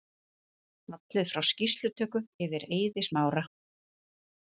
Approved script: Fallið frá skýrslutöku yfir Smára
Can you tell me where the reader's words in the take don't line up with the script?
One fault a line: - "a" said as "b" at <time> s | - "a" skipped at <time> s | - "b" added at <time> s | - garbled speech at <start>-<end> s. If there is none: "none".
- "Eiði" added at 2.8 s